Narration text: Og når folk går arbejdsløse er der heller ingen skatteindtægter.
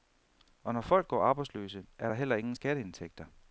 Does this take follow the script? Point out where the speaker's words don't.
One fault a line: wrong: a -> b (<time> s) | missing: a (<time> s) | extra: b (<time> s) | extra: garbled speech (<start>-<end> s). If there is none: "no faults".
no faults